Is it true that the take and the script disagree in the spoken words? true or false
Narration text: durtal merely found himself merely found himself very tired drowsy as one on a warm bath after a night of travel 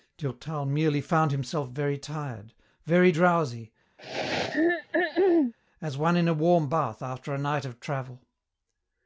true